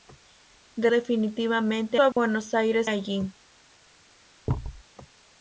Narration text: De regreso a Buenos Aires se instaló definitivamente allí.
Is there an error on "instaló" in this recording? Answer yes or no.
yes